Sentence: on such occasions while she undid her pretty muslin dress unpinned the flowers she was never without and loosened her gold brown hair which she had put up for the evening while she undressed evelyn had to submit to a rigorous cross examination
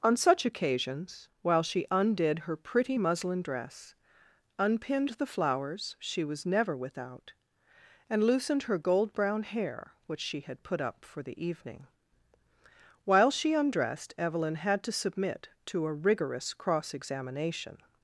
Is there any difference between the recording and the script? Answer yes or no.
no